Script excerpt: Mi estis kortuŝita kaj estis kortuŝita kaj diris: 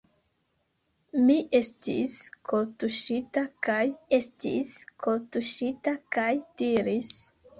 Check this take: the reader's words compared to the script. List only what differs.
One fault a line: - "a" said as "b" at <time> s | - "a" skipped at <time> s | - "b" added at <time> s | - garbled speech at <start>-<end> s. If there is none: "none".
none